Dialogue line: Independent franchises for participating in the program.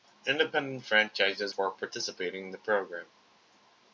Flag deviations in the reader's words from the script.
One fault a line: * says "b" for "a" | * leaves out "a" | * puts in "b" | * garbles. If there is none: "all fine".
all fine